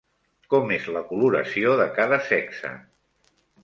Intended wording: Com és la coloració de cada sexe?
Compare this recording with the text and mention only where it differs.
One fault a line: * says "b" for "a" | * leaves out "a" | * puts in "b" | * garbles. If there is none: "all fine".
all fine